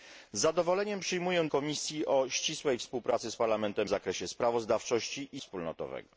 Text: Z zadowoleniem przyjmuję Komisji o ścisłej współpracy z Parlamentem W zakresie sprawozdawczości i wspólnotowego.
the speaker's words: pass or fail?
pass